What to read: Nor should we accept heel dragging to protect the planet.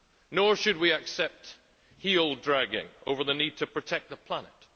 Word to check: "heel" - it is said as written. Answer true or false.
true